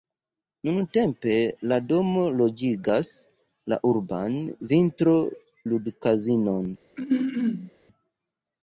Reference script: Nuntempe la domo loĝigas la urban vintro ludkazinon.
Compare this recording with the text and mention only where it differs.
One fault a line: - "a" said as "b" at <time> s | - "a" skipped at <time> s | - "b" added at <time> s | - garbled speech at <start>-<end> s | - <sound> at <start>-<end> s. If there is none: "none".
- throat clearing at 7.0-7.7 s